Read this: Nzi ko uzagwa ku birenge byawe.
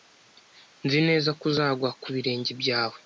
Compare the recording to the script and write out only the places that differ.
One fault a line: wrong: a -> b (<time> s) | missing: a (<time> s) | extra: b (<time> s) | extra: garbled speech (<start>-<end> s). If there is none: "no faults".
extra: neza (1.1 s)